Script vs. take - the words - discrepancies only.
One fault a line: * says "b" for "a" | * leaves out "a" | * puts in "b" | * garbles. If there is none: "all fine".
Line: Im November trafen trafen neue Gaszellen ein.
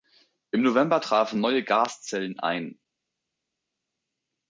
* leaves out "trafen"